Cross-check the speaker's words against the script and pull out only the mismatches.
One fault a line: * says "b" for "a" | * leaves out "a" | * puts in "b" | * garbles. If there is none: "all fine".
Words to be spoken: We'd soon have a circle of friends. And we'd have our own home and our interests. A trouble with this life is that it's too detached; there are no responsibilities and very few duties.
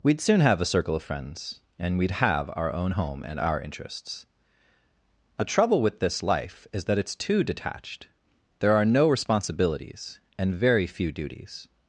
all fine